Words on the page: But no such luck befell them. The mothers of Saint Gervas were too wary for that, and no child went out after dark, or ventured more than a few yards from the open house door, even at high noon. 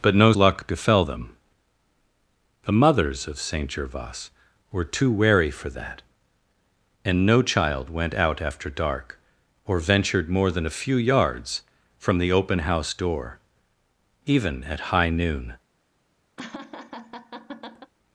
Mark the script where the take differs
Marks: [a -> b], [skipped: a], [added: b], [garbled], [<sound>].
But no [skipped: such] luck befell them. The mothers of Saint Gervas were too wary for that, and no child went out after dark, or ventured more than a few yards from the open house door, even at high noon. [laugh]